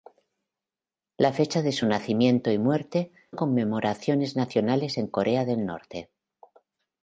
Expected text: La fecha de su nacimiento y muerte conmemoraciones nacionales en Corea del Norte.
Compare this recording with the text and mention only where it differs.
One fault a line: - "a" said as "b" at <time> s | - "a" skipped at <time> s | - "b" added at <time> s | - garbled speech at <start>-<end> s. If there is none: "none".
none